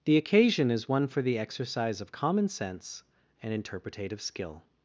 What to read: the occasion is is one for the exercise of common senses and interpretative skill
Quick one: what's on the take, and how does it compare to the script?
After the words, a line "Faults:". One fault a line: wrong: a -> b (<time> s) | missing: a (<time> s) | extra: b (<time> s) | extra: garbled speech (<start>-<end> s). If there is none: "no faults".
the occasion is one for the exercise of common sense and interpretative skill
Faults:
missing: is (0.9 s)
wrong: senses -> sense (2.5 s)